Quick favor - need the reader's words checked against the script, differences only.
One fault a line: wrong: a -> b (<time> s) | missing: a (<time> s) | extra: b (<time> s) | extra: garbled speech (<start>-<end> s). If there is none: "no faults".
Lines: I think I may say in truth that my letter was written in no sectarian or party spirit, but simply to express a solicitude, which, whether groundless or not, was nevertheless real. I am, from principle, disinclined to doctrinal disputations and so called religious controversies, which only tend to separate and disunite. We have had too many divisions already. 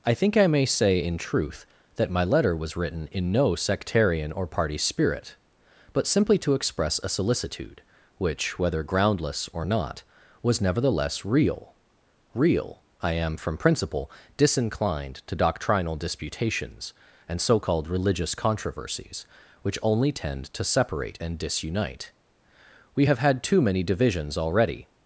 extra: real (12.3 s)